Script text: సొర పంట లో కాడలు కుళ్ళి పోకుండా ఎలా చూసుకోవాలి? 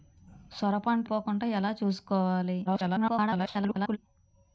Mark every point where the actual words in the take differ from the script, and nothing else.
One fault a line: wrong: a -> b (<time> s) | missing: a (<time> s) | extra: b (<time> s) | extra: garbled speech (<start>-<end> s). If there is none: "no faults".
missing: లో కాడలు కుళ్ళి (1.1 s)
extra: garbled speech (2.7-4.0 s)